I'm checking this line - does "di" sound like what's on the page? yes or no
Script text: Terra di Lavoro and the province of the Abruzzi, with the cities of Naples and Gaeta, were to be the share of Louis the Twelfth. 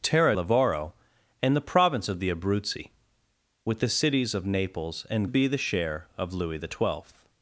no